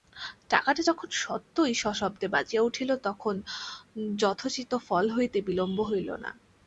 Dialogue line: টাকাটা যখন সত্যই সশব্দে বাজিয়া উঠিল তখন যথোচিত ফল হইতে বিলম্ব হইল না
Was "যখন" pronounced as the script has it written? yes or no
yes